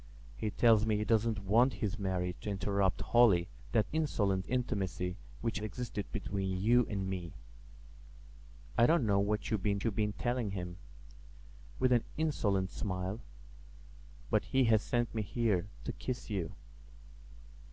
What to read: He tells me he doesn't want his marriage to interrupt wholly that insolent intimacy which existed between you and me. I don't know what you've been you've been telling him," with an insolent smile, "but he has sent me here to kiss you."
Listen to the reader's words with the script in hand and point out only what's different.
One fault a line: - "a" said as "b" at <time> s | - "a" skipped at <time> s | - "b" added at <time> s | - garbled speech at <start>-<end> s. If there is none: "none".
none